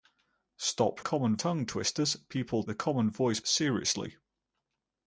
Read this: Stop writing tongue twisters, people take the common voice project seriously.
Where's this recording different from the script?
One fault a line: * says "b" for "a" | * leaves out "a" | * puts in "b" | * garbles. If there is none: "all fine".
* says "common" for "writing"
* leaves out "take"
* leaves out "project"